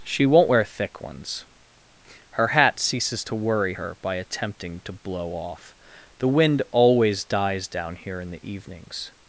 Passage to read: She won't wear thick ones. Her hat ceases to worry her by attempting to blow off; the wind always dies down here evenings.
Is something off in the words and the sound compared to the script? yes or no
yes